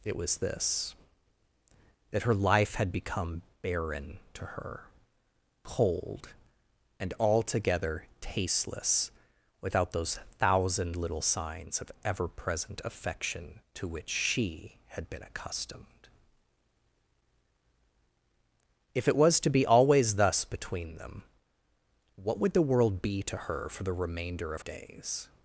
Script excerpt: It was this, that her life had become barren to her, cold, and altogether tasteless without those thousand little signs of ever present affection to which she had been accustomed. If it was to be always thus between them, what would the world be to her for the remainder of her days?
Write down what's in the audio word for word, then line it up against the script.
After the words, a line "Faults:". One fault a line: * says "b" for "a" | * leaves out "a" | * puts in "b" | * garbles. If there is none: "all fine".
It was this, that her life had become barren to her, cold, and altogether tasteless without those thousand little signs of ever present affection to which she had been accustomed. If it was to be always thus between them, what would the world be to her for the remainder of days?
Faults:
* leaves out "her"